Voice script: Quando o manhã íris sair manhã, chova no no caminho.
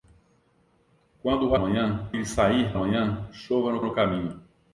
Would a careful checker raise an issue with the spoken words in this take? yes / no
no